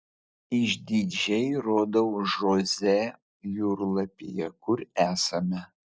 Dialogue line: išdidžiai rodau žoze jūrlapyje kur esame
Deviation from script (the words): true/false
false